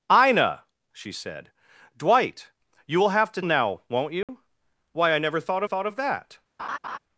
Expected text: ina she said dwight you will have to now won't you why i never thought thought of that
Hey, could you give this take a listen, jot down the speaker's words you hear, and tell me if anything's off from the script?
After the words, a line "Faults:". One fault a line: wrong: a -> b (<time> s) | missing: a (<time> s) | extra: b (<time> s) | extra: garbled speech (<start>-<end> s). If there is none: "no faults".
ina she said dwight you will have to now won't you why i never thought thought of that
Faults:
no faults